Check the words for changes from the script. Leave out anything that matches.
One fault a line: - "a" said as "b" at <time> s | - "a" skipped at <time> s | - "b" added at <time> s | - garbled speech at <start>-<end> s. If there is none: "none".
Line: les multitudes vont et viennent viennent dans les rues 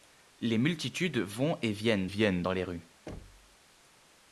none